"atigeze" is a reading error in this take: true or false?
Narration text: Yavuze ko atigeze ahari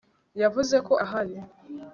true